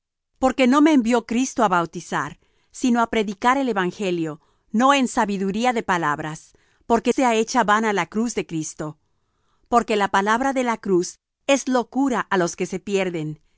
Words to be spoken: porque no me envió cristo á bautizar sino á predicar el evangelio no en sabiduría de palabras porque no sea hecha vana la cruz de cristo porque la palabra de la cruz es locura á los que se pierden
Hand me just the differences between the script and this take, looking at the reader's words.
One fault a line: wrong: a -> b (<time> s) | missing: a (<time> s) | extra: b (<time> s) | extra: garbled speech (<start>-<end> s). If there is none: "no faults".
missing: no (7.1 s)